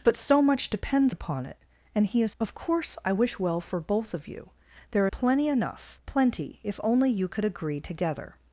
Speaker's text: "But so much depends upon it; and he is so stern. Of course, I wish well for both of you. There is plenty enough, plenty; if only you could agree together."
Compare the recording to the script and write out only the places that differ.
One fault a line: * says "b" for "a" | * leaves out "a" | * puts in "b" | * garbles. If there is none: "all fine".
* leaves out "so stern"
* leaves out "is"